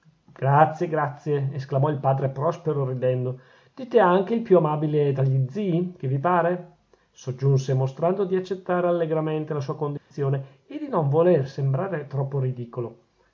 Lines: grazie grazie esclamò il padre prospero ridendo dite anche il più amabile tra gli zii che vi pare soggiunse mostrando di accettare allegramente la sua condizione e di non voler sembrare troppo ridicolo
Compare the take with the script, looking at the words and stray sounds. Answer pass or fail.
fail